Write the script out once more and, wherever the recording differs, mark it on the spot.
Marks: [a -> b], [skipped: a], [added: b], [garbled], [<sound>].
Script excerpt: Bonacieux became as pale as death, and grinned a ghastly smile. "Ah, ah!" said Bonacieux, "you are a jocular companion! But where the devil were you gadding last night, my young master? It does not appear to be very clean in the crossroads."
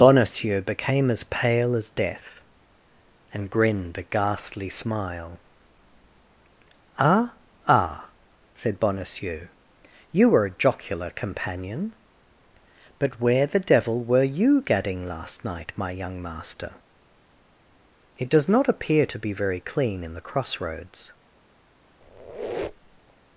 Bonacieux became as pale as death, and grinned a ghastly smile. "Ah, ah!" said Bonacieux, "you [are -> were] a jocular companion! But where the devil were you gadding last night, my young master? It does not appear to be very clean in the crossroads." [squeak]